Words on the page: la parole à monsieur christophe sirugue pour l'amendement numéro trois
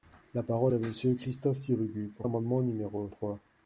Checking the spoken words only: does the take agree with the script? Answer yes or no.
yes